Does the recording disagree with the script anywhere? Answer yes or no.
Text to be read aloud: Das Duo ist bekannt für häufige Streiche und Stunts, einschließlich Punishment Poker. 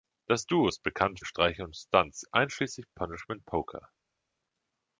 yes